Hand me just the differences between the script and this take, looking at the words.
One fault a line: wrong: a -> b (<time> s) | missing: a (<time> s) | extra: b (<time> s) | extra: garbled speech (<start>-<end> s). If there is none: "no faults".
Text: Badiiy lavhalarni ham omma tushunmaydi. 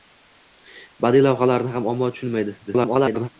extra: garbled speech (2.7-3.3 s)